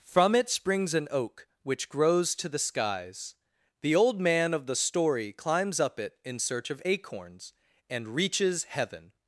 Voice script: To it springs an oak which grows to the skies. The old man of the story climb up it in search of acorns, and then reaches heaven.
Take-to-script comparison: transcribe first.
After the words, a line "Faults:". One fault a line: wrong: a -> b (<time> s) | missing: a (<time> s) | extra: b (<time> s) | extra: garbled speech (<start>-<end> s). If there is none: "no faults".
From it springs an oak which grows to the skies. The old man of the story climbs up it in search of acorns, and reaches heaven.
Faults:
wrong: To -> From (0.0 s)
wrong: climb -> climbs (5.3 s)
missing: then (8.1 s)